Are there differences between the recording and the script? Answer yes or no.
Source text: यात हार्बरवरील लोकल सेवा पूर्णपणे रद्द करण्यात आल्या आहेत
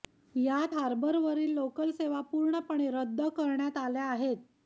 no